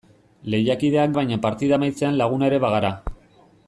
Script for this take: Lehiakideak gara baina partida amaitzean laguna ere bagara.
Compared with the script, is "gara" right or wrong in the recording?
wrong